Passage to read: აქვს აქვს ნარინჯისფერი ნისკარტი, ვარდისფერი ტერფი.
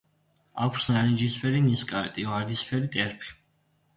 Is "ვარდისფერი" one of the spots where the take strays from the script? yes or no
no